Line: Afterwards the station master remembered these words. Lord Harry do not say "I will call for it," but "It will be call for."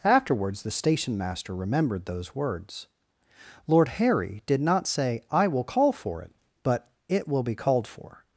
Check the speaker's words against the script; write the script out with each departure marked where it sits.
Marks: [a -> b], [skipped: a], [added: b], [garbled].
Afterwards the station master remembered [these -> those] words. Lord Harry [do -> did] not say "I will call for it," but "It will be [call -> called] for."